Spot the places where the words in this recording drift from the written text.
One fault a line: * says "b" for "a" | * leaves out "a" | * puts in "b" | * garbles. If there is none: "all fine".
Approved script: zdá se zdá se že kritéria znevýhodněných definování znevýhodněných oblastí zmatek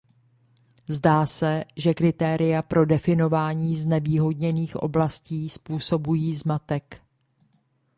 * leaves out "zdá se"
* says "pro" for "znevýhodněných"
* puts in "způsobují"